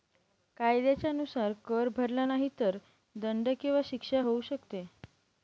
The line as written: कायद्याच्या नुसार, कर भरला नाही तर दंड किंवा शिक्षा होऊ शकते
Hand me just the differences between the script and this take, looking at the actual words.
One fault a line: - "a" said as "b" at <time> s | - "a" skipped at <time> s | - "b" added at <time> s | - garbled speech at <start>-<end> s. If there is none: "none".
none